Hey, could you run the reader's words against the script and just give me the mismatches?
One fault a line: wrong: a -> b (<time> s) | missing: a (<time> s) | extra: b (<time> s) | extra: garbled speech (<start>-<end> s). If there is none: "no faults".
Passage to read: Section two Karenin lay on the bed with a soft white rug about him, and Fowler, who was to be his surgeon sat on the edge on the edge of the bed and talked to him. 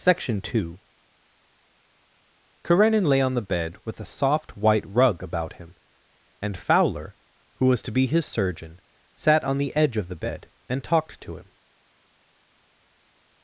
missing: on the edge (10.0 s)